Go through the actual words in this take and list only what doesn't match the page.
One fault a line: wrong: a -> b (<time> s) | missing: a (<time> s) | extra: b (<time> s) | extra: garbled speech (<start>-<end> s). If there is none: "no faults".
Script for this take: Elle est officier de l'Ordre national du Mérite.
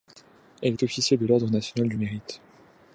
no faults